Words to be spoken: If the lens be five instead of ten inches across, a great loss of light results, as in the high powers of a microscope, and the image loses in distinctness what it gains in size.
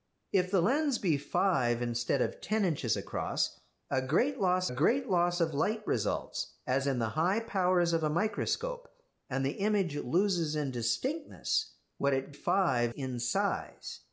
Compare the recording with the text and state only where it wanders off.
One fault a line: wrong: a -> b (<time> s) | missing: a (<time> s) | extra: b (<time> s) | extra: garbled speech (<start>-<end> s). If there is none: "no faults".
extra: great loss (4.7 s)
wrong: gains -> five (12.3 s)